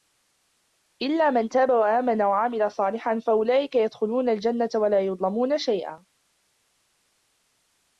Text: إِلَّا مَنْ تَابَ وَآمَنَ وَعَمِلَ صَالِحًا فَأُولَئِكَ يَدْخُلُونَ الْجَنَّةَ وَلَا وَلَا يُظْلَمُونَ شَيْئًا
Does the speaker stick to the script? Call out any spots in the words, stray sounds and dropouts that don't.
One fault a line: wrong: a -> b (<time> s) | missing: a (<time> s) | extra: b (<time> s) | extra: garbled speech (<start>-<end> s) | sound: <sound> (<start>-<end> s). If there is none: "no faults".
missing: وَلَا (5.0 s)